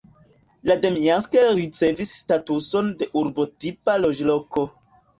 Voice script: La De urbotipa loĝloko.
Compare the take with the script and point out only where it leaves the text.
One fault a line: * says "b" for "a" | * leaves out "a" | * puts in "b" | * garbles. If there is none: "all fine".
* puts in "Demjansk ricevis statuson"